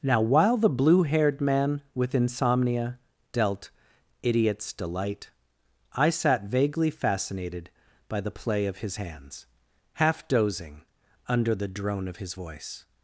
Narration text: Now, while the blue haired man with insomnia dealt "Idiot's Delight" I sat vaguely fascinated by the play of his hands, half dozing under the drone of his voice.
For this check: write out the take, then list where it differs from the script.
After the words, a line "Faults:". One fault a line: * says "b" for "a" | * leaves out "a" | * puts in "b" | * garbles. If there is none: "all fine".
Now, while the blue haired man with insomnia dealt "Idiot's Delight" I sat vaguely fascinated by the play of his hands, half dozing under the drone of his voice.
Faults:
all fine